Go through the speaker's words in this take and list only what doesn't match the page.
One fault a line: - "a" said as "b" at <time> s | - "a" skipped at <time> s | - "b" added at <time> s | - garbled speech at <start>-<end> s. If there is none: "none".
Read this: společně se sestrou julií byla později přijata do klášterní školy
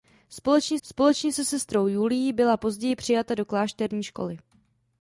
- "společně" added at 0.8 s